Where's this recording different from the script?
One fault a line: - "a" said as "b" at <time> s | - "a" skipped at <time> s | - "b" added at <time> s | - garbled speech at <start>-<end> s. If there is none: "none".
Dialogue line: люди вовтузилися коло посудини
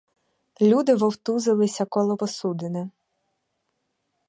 none